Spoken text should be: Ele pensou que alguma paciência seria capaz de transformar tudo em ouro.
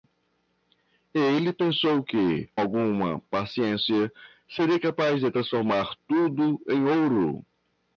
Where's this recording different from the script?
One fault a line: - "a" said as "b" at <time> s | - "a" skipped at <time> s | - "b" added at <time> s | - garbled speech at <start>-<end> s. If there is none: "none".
none